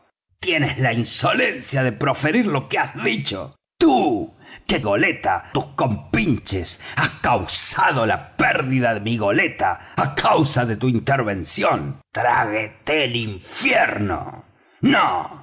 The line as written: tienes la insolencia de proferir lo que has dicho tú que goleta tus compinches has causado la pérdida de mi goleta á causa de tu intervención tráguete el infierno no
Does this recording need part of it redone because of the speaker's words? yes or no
no